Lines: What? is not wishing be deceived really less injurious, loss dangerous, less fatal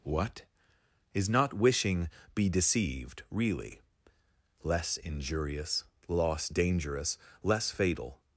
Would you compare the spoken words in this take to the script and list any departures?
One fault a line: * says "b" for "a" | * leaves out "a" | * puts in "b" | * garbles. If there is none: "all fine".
all fine